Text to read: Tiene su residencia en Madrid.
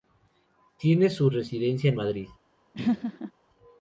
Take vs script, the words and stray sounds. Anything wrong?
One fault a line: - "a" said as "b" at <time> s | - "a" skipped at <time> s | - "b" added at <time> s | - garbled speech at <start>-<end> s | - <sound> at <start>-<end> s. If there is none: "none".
- laugh at 2.7-3.3 s